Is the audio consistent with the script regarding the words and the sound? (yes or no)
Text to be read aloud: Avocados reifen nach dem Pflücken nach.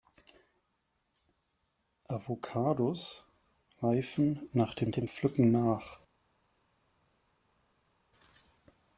no